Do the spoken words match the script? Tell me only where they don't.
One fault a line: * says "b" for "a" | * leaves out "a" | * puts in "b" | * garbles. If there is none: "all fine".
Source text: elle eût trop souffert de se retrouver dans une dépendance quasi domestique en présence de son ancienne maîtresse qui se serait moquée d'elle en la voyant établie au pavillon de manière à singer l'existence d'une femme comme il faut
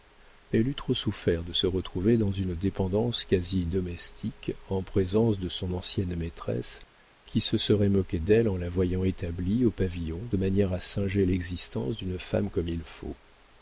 all fine